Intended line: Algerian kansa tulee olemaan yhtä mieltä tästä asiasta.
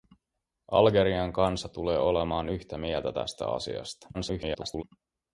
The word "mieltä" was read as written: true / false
true